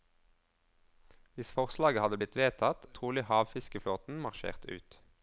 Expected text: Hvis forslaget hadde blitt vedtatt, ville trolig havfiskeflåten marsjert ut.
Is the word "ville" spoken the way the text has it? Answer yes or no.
no